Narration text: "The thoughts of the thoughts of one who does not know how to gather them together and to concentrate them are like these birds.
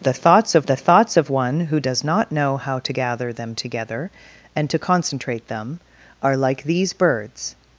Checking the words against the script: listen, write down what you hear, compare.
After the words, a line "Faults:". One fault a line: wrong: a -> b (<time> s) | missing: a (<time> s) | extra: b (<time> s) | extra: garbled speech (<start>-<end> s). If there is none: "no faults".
"The thoughts of the thoughts of one who does not know how to gather them together and to concentrate them are like these birds.
Faults:
no faults